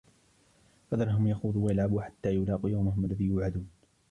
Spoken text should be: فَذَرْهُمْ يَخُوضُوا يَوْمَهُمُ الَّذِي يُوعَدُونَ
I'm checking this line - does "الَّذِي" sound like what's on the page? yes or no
yes